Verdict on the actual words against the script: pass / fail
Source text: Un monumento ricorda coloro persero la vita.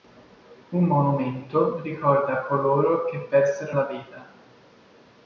fail